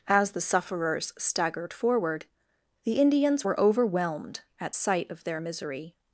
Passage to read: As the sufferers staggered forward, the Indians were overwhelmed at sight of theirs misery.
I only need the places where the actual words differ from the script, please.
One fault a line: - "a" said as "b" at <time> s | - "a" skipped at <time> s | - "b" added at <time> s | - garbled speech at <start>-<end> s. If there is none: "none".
- "theirs" said as "their" at 5.2 s